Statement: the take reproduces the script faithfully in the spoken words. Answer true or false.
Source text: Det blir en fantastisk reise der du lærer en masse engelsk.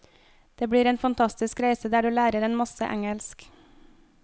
true